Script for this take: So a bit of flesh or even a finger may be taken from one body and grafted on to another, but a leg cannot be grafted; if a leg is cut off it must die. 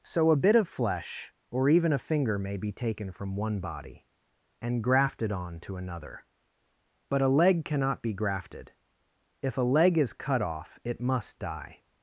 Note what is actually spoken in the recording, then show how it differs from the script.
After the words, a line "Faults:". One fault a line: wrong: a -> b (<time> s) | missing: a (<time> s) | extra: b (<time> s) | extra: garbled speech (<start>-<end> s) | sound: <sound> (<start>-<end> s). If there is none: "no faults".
So a bit of flesh or even a finger may be taken from one body and grafted on to another, but a leg cannot be grafted; if a leg is cut off it must die.
Faults:
no faults